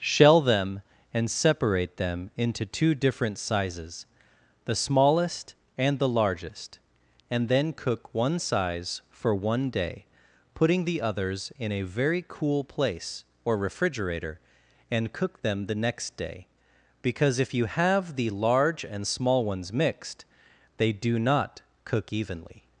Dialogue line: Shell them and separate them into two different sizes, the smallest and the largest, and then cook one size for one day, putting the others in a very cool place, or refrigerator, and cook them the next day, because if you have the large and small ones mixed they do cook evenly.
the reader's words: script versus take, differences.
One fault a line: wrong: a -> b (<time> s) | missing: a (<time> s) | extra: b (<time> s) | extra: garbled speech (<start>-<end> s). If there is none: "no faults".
extra: not (21.2 s)